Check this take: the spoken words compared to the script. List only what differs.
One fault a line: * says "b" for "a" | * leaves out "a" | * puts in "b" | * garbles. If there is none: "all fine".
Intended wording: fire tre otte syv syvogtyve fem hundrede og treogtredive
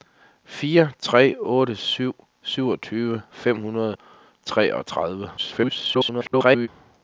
* garbles